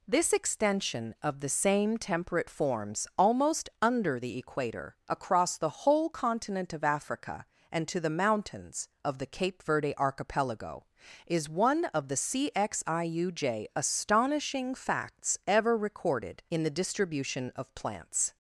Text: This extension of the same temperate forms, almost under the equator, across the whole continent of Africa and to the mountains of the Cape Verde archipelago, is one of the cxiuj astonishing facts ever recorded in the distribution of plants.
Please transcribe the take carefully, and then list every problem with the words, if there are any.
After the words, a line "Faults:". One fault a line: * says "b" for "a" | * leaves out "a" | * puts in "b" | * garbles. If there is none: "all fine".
This extension of the same temperate forms, almost under the equator, across the whole continent of Africa and to the mountains of the Cape Verde archipelago, is one of the cxiuj astonishing facts ever recorded in the distribution of plants.
Faults:
all fine